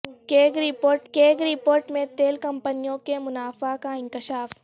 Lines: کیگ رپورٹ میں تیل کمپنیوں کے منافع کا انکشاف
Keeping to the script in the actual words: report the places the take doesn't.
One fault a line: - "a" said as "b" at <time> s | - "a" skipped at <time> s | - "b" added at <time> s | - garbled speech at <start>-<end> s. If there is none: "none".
- "کیگ رپورٹ" added at 1.1 s